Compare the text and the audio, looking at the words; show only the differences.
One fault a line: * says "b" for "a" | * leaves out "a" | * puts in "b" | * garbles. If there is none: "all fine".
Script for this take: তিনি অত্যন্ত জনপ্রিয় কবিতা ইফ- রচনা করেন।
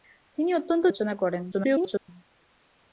* leaves out "জনপ্রিয় কবিতা ইফ"
* garbles